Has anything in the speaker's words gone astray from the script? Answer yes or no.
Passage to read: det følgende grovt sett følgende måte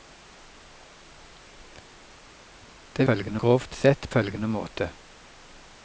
no